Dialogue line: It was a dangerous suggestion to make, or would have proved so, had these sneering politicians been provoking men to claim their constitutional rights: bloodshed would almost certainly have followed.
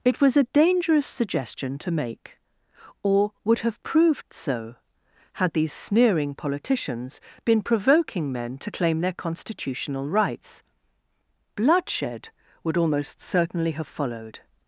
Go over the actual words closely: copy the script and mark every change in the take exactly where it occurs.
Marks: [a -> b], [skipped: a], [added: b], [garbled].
It was a dangerous suggestion to make, or would have proved so, had these sneering politicians been provoking men to claim their constitutional rights: bloodshed would almost certainly have followed.